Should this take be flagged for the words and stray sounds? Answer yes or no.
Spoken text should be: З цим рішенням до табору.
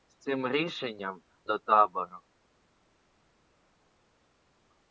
no